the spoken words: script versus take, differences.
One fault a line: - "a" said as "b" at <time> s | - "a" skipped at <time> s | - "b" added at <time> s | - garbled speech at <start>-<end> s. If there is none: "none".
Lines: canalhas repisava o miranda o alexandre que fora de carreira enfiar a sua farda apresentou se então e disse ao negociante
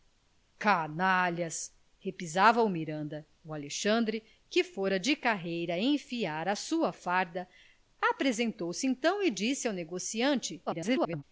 - garbled speech at 10.7-11.2 s